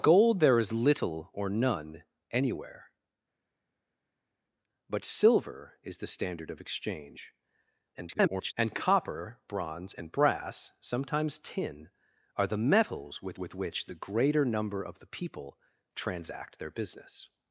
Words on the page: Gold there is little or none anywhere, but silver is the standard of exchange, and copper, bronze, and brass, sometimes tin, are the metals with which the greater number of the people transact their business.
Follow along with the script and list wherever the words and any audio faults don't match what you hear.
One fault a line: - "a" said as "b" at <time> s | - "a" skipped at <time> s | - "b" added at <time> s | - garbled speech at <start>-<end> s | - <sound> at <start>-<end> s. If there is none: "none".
- garbled speech at 7.9-8.5 s
- "with" added at 13.4 s